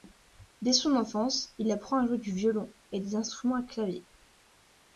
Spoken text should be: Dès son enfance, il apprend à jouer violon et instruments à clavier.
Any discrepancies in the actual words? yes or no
yes